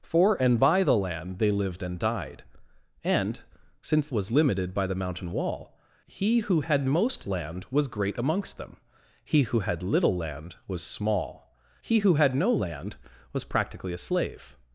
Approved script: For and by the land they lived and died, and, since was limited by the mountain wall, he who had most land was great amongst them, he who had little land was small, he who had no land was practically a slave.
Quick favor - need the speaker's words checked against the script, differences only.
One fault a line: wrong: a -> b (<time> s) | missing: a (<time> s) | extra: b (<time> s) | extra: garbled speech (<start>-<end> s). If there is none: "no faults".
no faults